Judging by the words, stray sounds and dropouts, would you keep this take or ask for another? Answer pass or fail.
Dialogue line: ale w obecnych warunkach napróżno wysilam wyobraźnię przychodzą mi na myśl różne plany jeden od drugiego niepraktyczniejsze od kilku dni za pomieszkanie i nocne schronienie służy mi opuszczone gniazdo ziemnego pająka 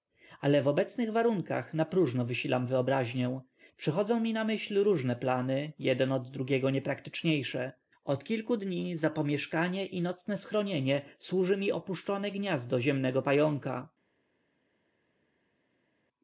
pass